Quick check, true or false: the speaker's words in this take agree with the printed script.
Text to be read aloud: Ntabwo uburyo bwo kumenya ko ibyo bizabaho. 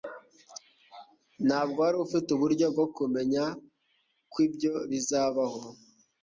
false